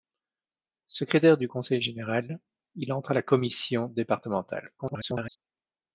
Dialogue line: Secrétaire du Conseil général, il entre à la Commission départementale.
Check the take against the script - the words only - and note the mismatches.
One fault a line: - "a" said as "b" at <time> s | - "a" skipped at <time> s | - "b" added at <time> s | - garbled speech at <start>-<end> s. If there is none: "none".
- garbled speech at 4.8-5.4 s